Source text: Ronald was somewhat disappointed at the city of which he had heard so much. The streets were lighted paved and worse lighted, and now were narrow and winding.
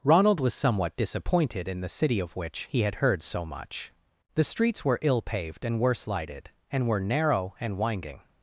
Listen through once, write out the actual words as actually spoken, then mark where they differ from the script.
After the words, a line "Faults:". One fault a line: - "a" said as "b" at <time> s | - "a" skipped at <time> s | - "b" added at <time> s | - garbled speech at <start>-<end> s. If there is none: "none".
Ronald was somewhat disappointed in the city of which he had heard so much. The streets were ill paved and worse lighted, and were narrow and winding.
Faults:
- "at" said as "in" at 1.7 s
- "lighted" said as "ill" at 5.0 s
- "now" skipped at 6.9 s